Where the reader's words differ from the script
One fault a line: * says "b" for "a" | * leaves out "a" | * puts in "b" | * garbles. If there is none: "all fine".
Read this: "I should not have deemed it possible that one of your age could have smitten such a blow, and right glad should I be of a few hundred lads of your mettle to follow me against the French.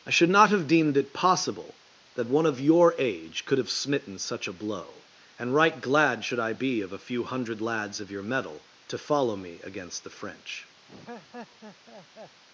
all fine